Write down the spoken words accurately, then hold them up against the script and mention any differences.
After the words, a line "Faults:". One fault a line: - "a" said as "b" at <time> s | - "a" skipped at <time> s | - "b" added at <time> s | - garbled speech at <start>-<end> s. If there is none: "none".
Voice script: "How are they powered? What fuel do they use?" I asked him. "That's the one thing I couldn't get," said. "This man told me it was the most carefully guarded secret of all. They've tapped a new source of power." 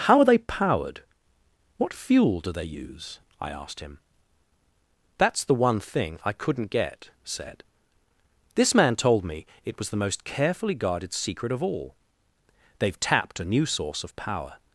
"How are they powered? What fuel do they use?" I asked him. "That's the one thing I couldn't get," said. "This man told me it was the most carefully guarded secret of all. They've tapped a new source of power."
Faults:
none